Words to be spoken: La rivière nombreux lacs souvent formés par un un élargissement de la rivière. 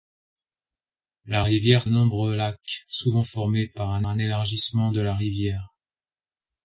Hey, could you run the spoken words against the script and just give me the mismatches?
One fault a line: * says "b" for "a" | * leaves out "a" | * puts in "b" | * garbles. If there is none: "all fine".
all fine